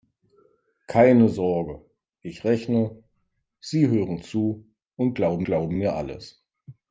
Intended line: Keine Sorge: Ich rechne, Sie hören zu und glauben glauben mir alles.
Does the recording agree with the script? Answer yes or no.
yes